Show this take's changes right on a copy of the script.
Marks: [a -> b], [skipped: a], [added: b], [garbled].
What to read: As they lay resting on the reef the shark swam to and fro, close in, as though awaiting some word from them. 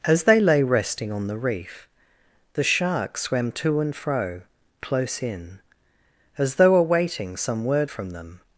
As they lay resting on the reef the shark swam to and fro, close in, as though awaiting some word from them.